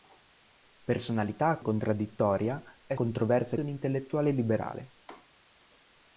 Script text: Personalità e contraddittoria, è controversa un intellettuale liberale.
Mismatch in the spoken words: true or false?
false